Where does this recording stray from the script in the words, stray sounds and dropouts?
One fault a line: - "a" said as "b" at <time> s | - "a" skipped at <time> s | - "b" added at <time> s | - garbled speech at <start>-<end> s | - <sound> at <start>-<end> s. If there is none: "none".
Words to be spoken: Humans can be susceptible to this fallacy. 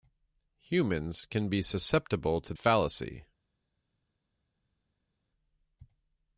- "this" skipped at 2.5 s